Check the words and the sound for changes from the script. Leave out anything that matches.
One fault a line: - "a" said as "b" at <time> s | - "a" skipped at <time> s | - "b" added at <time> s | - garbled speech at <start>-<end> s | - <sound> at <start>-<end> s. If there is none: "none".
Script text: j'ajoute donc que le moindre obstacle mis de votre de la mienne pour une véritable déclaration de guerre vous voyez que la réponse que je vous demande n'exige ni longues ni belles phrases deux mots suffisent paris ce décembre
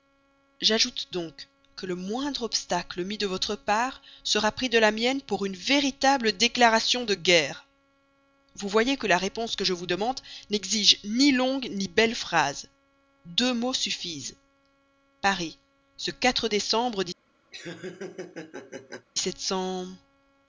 - "part sera pris" added at 3.5 s
- laugh at 17.5-19.1 s